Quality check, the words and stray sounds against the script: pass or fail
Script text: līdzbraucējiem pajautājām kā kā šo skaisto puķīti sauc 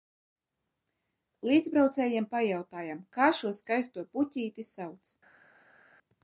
fail